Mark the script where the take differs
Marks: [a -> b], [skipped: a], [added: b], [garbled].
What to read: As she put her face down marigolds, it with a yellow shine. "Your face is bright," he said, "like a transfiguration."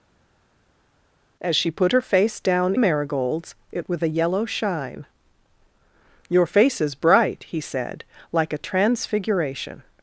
As she put her face down marigolds, it with a yellow shine. "Your face is bright," he said, "like a transfiguration."